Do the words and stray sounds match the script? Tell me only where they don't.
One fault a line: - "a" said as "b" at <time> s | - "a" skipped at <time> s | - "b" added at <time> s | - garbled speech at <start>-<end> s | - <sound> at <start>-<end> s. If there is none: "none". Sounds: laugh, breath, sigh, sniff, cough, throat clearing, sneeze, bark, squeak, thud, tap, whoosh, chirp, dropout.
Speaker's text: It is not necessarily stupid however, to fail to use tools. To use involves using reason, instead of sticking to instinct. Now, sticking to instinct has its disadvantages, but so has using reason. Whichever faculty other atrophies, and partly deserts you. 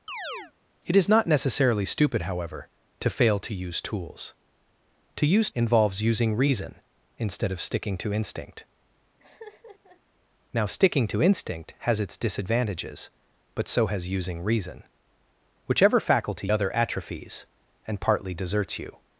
- chirp at 0.1-0.5 s
- laugh at 9.2-10.0 s